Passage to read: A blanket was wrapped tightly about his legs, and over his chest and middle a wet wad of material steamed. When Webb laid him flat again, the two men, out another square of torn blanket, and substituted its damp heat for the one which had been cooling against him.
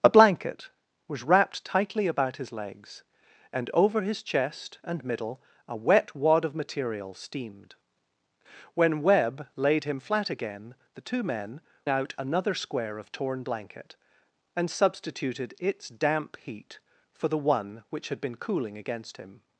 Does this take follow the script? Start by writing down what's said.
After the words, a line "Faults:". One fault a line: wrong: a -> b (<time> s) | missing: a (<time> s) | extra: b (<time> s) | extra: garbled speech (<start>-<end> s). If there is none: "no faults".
A blanket was wrapped tightly about his legs, and over his chest and middle a wet wad of material steamed. When Webb laid him flat again, the two men, out another square of torn blanket, and substituted its damp heat for the one which had been cooling against him.
Faults:
no faults